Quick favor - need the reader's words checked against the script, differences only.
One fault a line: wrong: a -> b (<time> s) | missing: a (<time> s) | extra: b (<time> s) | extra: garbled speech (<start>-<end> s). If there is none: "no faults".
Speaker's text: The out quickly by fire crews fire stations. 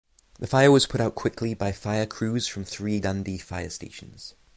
extra: fire was put (0.4 s)
extra: from three Dundee (2.5 s)